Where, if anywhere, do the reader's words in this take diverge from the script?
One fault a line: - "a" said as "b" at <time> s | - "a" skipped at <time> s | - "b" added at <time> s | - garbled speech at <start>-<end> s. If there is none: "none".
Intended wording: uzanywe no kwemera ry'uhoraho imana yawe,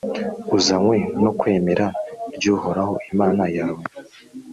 none